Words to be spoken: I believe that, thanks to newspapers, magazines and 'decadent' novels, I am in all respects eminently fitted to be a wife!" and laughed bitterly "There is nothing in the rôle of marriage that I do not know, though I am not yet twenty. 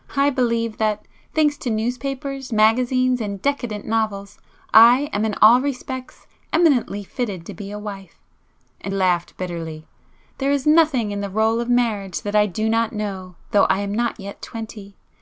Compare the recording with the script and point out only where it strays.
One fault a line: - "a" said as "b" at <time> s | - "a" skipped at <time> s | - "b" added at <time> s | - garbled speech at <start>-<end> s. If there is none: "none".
none